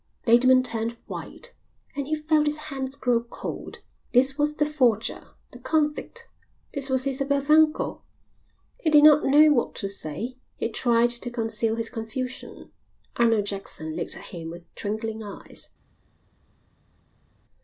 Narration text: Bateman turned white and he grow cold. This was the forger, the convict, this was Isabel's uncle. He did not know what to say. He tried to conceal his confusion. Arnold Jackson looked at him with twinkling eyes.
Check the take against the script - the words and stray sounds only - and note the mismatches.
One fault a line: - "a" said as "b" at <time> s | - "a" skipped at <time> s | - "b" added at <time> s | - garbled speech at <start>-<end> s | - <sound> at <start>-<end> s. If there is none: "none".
- "felt his hands" added at 2.1 s